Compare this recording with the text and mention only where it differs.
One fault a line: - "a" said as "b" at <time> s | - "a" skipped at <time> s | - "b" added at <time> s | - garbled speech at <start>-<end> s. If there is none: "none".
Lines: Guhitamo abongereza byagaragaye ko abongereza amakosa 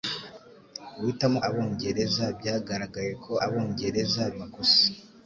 none